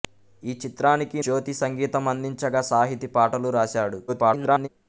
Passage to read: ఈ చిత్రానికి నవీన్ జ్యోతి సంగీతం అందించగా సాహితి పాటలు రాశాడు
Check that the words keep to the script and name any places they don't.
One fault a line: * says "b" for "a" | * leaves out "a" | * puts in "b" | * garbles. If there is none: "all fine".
* leaves out "నవీన్"
* garbles